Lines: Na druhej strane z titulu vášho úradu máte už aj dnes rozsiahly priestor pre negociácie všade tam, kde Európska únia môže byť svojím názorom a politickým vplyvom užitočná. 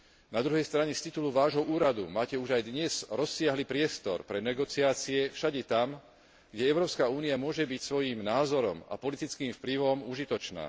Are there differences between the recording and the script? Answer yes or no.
no